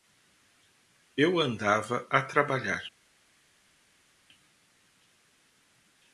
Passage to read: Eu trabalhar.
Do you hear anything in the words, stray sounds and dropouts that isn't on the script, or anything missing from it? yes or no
yes